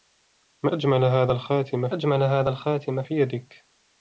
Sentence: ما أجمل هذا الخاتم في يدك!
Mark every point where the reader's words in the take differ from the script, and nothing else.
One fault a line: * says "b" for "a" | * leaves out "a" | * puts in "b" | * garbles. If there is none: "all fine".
* puts in "أجمل هذا الخاتم"